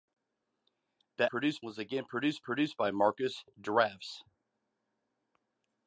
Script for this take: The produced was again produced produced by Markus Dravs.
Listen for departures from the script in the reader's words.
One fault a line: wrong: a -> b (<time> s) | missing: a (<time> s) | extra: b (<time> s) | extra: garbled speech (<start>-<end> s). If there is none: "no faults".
no faults